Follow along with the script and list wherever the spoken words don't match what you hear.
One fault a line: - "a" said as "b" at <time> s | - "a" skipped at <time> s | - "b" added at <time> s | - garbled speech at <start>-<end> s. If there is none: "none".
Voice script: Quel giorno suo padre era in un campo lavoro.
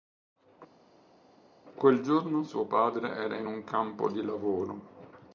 - "di" added at 4.1 s